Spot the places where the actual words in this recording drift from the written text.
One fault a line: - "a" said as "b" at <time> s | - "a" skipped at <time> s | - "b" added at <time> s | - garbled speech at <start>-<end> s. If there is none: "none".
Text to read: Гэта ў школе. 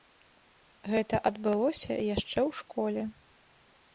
- "адбылося яшчэ" added at 1.3 s